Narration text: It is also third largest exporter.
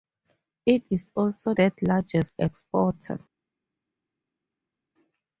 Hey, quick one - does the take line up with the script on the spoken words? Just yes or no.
yes